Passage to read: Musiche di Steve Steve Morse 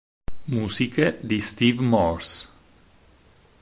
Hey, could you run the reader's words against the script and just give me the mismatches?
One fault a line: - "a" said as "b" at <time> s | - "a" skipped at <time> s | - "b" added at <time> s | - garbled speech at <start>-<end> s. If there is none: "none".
- "Steve" skipped at 1.8 s